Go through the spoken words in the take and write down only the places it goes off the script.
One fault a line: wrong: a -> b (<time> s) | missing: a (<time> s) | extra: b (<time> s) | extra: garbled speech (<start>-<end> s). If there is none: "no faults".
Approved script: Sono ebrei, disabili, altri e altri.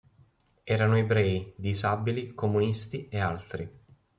wrong: Sono -> Erano (0.6 s)
wrong: altri -> comunisti (2.3 s)